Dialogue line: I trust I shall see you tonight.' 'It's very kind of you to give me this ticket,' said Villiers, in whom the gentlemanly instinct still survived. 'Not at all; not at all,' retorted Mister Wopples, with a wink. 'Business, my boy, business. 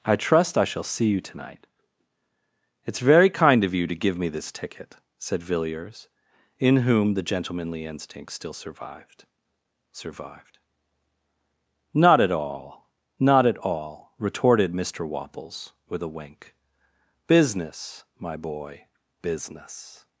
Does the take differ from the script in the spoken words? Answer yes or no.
yes